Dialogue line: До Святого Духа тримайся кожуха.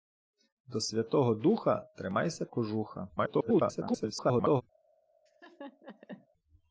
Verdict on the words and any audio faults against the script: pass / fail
fail